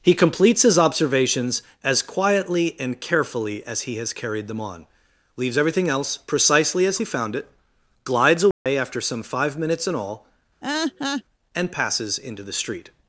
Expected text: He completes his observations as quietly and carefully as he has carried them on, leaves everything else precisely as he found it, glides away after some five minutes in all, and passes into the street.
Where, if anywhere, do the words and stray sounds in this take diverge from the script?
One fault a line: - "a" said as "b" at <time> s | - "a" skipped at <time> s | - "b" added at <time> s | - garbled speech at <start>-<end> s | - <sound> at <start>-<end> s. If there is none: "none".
- dropout at 8.5-8.7 s
- laugh at 10.6-11.2 s